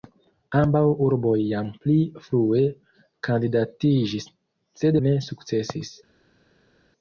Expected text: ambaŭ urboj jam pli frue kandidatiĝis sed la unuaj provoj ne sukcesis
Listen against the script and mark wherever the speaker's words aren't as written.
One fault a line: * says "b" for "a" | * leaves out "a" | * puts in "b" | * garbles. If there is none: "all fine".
* leaves out "la unuaj provoj"